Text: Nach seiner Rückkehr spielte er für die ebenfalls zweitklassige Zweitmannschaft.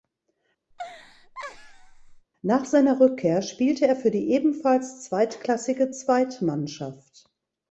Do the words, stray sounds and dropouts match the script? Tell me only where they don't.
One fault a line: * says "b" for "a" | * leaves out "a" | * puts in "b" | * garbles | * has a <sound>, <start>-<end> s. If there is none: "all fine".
* has a laugh, 0.7-2.3 s